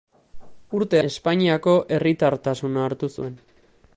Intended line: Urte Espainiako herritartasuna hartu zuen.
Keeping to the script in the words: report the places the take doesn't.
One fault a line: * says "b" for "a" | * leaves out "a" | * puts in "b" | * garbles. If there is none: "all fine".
all fine